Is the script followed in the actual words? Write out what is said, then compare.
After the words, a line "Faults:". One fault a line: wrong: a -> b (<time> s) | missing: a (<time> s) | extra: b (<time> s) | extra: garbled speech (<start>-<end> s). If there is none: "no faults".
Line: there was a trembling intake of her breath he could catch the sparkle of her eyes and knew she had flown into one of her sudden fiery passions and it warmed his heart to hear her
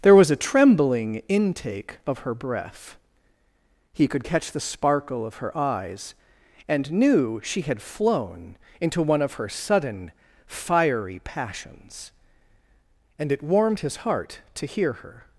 there was a trembling intake of her breath he could catch the sparkle of her eyes and knew she had flown into one of her sudden fiery passions and it warmed his heart to hear her
Faults:
no faults